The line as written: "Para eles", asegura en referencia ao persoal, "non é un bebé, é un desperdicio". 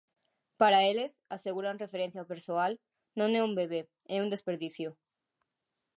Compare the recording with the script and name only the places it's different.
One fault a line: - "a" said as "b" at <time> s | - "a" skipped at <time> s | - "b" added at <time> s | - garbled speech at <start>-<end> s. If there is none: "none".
none